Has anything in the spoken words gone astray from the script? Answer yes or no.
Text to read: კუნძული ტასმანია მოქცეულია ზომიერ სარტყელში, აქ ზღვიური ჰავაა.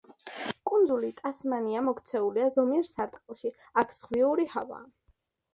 no